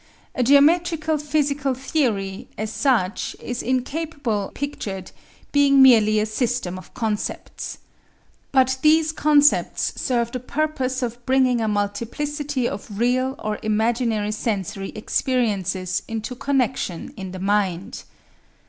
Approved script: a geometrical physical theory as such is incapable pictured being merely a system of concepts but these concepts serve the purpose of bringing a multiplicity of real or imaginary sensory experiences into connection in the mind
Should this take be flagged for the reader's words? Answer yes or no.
no